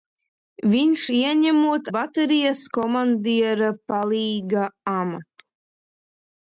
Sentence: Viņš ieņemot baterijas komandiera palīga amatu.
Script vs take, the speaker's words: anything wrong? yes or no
no